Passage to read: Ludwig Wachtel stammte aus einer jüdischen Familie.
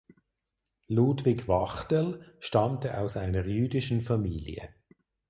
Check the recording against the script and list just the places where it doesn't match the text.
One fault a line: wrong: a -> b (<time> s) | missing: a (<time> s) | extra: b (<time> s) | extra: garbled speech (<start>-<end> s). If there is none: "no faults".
no faults